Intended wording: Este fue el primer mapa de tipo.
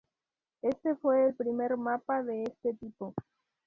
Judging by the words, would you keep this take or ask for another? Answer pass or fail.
fail